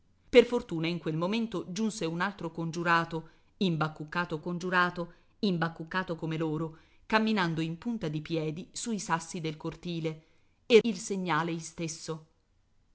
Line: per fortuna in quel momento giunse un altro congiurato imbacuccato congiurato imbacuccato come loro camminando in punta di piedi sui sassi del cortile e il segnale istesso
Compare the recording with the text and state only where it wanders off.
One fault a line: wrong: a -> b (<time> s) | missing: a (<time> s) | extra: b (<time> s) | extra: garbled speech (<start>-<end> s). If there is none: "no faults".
no faults